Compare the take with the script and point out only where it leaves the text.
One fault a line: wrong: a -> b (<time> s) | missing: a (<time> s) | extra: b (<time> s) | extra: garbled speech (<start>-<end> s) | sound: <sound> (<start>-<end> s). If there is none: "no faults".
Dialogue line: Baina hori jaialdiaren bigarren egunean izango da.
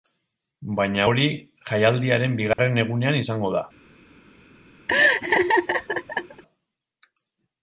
sound: dropout (2.5-2.6 s)
sound: laugh (4.9-6.4 s)